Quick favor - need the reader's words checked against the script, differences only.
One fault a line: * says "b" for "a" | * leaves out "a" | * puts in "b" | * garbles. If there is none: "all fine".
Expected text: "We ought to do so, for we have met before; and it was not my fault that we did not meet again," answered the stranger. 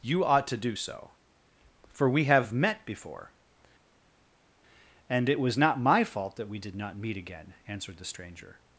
* says "You" for "We"